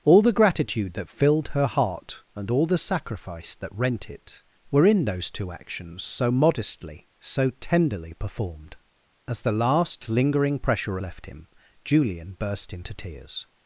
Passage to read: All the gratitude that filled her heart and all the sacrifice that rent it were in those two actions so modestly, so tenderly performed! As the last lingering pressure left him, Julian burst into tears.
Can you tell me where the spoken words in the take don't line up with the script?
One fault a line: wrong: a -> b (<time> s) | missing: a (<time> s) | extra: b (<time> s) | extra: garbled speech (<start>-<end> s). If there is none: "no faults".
no faults